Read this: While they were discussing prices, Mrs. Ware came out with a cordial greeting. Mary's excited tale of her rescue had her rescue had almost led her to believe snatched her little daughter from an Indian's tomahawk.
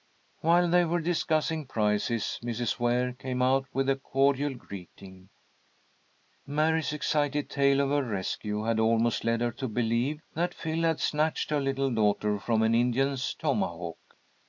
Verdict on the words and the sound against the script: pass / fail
fail